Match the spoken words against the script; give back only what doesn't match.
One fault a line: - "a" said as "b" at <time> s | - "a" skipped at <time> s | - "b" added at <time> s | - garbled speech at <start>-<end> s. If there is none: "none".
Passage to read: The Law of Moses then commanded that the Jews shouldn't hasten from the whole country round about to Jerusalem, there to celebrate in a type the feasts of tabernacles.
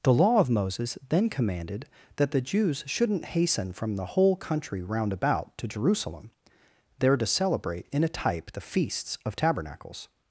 none